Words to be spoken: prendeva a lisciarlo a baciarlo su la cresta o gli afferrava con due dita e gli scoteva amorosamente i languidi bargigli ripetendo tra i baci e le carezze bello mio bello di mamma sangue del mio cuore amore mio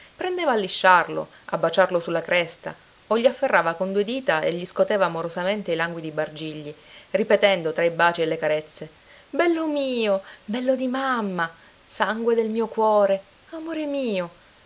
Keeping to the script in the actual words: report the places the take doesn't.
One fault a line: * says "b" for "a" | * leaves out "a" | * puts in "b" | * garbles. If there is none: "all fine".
all fine